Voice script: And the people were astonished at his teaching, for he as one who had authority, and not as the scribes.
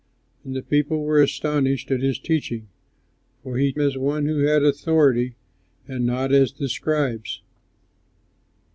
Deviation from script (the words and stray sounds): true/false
false